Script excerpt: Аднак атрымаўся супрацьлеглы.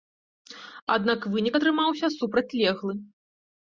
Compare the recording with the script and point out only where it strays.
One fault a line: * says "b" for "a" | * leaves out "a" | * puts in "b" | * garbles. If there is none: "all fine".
* puts in "вынік"